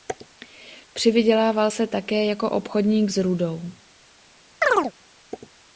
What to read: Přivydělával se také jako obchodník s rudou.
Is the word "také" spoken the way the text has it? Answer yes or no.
yes